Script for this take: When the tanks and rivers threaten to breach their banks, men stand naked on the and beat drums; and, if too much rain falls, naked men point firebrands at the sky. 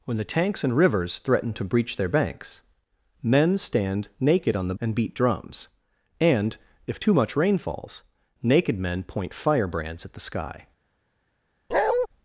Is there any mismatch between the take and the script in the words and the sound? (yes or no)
yes